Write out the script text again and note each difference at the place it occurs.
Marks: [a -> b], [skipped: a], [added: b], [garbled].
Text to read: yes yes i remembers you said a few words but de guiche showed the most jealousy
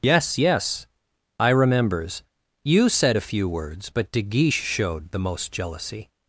yes yes i remembers you said a few words but de guiche showed the most jealousy